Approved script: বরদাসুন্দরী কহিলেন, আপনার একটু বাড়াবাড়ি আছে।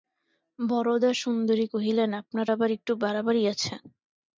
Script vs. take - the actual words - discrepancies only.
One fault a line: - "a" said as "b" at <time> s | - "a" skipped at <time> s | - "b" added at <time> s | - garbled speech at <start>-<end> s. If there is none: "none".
- "আবার" added at 2.5 s